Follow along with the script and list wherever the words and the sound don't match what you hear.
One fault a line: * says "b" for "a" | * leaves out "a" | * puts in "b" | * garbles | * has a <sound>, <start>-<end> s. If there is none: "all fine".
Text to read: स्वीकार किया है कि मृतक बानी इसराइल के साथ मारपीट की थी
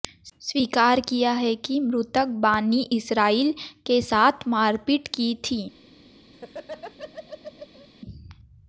* has a laugh, 6.3-7.9 s